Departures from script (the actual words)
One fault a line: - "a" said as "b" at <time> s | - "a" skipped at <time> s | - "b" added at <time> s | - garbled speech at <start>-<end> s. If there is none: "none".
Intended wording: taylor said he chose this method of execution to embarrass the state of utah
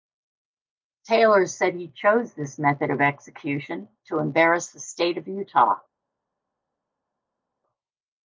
none